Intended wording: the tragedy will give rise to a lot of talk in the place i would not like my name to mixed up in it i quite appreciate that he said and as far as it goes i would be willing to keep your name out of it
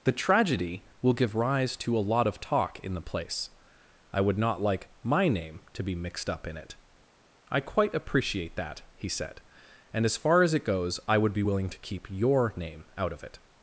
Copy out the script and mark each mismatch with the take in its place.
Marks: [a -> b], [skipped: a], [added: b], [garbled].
the tragedy will give rise to a lot of talk in the place i would not like my name to [added: be] mixed up in it i quite appreciate that he said and as far as it goes i would be willing to keep your name out of it